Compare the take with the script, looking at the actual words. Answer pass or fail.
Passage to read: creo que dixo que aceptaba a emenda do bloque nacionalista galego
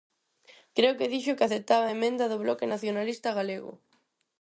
pass